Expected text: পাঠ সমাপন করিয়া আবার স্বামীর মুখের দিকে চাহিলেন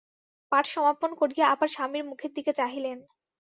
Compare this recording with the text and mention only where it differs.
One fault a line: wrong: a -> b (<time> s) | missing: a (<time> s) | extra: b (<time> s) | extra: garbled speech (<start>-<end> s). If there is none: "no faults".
no faults